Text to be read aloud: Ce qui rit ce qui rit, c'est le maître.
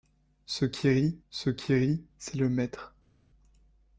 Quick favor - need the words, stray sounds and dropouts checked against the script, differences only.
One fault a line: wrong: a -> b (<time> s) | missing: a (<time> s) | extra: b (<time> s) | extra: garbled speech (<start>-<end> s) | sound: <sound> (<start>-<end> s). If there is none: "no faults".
no faults